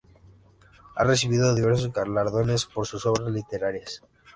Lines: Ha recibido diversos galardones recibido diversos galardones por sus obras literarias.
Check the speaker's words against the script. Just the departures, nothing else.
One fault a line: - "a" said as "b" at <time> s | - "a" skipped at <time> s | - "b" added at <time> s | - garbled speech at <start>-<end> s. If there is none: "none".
- "recibido diversos galardones" skipped at 2.7 s